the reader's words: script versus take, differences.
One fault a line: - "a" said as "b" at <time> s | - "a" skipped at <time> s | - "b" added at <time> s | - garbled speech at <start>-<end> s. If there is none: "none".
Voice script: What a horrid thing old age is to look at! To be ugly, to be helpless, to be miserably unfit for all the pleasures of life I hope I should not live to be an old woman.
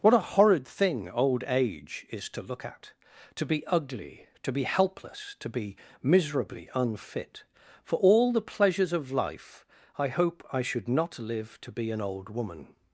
none